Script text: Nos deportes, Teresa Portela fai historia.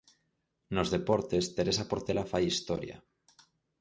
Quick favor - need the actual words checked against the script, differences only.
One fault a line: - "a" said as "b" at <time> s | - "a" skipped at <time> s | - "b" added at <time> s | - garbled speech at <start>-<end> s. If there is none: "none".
none